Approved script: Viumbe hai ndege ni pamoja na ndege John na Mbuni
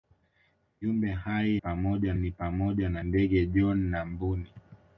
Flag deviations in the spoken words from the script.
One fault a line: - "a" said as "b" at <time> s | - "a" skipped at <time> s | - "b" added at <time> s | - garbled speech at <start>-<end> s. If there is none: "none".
- "ndege" said as "pamoja" at 1.5 s